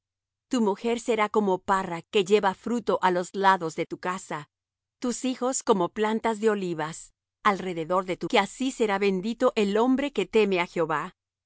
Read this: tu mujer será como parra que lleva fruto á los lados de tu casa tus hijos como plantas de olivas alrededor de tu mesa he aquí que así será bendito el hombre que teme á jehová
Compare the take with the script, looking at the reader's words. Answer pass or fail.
fail